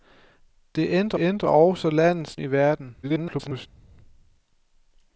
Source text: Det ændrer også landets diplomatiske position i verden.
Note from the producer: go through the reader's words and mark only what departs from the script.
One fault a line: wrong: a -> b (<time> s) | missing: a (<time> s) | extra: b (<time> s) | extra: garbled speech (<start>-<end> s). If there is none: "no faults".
extra: ændrer (1.2 s)
missing: diplomatiske position (2.4 s)
extra: garbled speech (3.0-3.7 s)